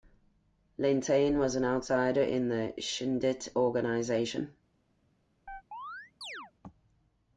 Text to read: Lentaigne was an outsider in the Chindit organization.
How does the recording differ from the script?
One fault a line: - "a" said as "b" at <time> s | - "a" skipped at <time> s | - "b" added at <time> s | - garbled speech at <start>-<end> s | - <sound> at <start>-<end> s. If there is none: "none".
- chirp at 5.5-6.5 s